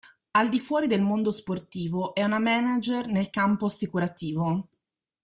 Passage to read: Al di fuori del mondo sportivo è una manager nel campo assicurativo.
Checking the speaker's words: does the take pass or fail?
pass